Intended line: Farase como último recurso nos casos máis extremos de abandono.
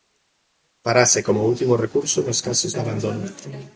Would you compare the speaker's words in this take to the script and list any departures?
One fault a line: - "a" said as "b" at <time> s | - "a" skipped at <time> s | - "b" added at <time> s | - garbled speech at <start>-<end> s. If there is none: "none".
- "máis extremos" skipped at 2.7 s